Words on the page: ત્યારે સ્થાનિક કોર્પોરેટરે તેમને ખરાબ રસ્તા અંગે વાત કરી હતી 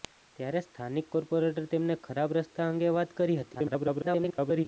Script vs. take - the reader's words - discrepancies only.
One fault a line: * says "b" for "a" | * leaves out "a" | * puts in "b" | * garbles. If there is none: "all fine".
* garbles